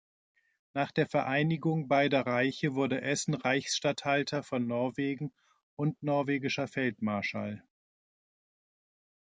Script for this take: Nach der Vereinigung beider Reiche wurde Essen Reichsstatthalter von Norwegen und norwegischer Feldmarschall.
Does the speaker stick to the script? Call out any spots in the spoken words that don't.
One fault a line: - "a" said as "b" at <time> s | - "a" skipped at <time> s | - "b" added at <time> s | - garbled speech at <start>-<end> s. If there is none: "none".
none